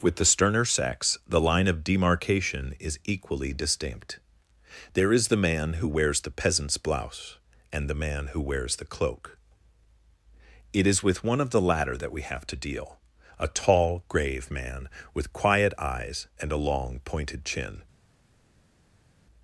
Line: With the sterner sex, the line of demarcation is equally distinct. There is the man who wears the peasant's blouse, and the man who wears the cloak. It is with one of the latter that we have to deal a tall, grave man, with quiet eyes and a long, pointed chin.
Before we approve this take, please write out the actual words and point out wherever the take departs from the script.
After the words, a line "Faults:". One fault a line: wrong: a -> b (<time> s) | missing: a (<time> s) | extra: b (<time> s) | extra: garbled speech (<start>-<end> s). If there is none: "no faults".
With the sterner sex, the line of demarcation is equally distinct. There is the man who wears the peasant's blouse, and the man who wears the cloak. It is with one of the latter that we have to deal a tall, grave man, with quiet eyes and a long, pointed chin.
Faults:
no faults